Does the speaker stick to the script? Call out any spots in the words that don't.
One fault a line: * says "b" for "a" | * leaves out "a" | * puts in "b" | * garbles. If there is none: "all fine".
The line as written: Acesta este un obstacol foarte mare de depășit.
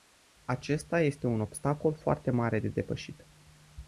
all fine